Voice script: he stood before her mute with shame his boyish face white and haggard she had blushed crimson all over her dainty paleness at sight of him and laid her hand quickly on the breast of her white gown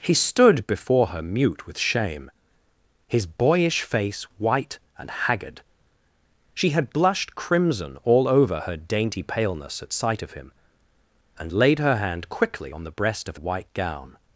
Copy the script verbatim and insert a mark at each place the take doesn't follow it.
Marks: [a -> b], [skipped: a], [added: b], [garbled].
he stood before her mute with shame his boyish face white and haggard she had blushed crimson all over her dainty paleness at sight of him and laid her hand quickly on the breast of [skipped: her] white gown